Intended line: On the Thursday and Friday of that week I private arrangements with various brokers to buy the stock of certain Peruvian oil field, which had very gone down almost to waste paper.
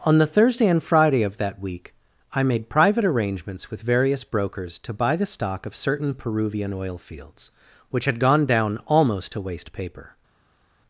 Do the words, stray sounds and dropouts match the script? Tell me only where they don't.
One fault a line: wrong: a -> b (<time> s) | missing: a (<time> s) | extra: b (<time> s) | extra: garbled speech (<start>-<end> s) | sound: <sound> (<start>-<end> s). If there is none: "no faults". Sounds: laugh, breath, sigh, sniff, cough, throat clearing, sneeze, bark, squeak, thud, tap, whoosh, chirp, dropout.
extra: made (2.4 s)
wrong: field -> fields (7.0 s)
missing: very (8.2 s)